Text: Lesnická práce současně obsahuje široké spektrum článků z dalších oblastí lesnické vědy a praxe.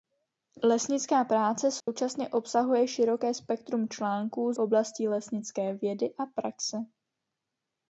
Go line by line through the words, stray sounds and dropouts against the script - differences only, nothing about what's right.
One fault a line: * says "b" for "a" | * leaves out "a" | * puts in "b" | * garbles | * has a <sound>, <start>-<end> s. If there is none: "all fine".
* has a dropout, 1.8-1.9 s
* leaves out "z dalších"